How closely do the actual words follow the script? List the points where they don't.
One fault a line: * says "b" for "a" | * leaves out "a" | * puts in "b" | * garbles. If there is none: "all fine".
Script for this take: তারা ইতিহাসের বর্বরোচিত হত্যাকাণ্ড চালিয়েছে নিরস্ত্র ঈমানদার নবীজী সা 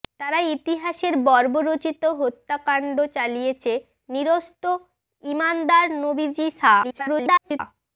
* garbles